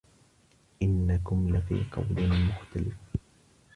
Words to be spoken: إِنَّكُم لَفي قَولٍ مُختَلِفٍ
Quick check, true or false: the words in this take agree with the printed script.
true